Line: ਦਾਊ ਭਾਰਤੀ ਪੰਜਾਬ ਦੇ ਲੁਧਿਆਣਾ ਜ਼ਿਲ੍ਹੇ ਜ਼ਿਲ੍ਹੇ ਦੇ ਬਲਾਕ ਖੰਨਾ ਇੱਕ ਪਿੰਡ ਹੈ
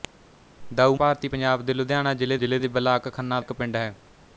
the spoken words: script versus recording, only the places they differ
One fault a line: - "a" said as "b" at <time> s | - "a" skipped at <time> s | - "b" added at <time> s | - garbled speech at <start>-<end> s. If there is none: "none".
none